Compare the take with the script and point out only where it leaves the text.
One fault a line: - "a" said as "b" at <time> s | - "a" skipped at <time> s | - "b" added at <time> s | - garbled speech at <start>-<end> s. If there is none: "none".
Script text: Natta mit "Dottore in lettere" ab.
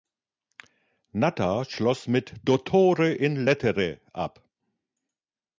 - "schloss" added at 1.6 s